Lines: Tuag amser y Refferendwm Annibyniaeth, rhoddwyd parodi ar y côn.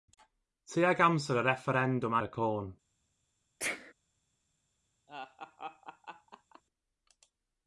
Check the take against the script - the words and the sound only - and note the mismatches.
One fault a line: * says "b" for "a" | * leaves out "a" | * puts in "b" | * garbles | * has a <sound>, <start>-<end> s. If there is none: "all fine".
* leaves out "Annibyniaeth rhoddwyd parodi"
* has a sneeze, 3.6-3.9 s
* has a laugh, 5.1-6.6 s